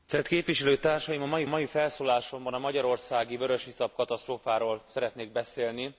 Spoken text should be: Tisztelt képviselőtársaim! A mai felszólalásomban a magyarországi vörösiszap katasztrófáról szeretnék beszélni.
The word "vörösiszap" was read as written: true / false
true